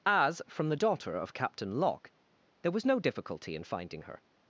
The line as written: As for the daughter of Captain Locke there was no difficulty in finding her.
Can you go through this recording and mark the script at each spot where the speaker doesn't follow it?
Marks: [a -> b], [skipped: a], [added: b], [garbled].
As [for -> from] the daughter of Captain Locke there was no difficulty in finding her.